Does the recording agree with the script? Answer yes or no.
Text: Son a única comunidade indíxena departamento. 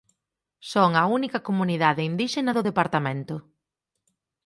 no